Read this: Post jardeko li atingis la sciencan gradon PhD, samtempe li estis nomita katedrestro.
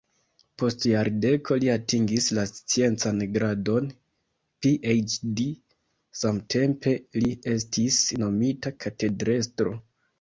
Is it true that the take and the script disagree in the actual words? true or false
false